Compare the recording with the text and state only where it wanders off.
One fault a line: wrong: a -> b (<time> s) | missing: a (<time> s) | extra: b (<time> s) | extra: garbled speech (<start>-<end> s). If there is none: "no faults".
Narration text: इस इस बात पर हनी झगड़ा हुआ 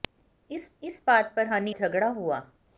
no faults